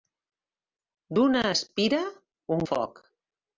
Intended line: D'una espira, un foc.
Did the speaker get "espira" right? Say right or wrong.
right